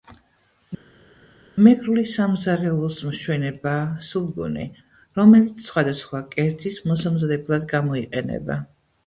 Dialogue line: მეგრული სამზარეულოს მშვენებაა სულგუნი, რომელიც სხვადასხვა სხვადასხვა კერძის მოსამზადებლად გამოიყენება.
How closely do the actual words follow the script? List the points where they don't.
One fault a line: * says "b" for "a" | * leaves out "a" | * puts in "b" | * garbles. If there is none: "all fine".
* leaves out "სხვადასხვა"